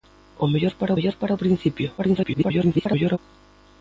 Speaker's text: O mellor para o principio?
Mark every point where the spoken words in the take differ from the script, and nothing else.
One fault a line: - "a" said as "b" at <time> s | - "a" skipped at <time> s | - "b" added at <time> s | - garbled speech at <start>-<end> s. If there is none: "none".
- "mellor para" added at 1.0 s
- garbled speech at 2.0-3.2 s